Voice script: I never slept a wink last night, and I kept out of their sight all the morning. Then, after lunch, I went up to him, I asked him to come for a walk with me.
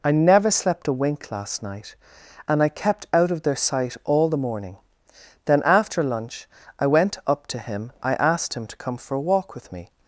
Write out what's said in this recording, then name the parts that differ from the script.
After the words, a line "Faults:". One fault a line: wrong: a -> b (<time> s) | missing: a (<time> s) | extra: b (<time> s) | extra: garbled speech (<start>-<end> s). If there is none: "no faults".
I never slept a wink last night, and I kept out of their sight all the morning. Then, after lunch, I went up to him, I asked him to come for a walk with me.
Faults:
no faults